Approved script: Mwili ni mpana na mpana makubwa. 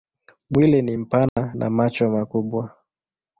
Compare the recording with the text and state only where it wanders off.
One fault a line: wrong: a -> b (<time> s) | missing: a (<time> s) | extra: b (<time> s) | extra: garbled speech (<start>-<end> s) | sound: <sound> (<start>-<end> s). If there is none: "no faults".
sound: dropout (1.3-1.4 s)
wrong: mpana -> macho (1.7 s)